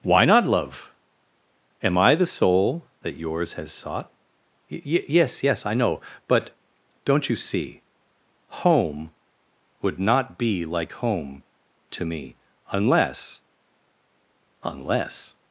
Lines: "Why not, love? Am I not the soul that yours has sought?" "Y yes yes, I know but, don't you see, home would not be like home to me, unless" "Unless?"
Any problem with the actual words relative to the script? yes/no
yes